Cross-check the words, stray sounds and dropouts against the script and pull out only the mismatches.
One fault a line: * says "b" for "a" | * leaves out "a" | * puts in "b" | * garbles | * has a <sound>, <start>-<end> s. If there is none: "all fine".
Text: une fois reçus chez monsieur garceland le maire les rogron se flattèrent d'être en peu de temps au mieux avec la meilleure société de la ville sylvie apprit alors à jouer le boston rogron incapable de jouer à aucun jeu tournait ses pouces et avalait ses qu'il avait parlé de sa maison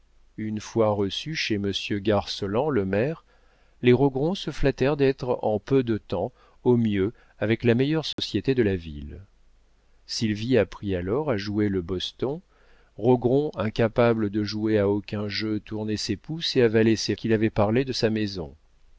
* has a dropout, 8.1-8.2 s